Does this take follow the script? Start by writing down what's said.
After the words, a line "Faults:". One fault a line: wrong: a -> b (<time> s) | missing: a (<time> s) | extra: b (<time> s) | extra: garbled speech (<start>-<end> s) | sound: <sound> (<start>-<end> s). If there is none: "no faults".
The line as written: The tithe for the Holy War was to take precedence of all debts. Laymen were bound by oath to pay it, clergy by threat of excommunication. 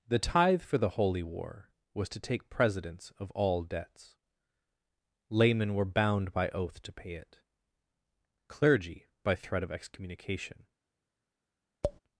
The tithe for the Holy War was to take precedence of all debts. Laymen were bound by oath to pay it, clergy by threat of excommunication.
Faults:
sound: tap (11.8-12.0 s)